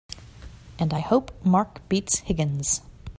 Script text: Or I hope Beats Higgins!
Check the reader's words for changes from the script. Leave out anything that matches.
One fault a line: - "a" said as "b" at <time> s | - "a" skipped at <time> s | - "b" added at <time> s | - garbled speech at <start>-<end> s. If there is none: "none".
- "Or" said as "And" at 0.8 s
- "Mark" added at 1.4 s